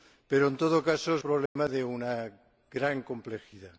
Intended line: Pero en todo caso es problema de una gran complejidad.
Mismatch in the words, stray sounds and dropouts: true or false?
true